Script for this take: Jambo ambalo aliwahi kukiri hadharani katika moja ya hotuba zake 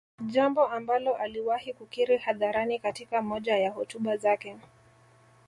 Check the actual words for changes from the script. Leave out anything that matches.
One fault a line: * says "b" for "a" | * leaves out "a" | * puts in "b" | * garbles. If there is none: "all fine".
all fine